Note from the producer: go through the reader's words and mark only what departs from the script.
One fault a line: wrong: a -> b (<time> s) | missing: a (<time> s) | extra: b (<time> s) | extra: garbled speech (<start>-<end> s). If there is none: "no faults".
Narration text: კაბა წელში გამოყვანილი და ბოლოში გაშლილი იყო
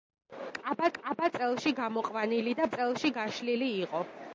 extra: კაბა (0.9 s)
wrong: ბოლოში -> წელში (2.7 s)